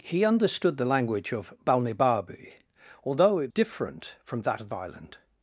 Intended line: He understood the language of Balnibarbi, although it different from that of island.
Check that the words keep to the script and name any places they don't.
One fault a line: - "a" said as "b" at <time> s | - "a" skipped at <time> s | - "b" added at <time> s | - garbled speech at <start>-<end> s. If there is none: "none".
none